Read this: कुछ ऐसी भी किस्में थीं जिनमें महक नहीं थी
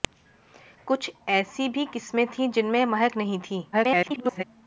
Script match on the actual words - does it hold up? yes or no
no